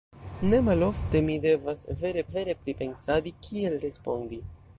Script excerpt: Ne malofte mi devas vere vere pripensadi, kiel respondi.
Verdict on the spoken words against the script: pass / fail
pass